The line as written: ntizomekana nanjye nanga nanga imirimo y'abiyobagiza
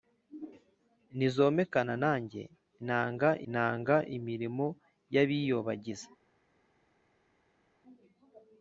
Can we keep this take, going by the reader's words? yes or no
yes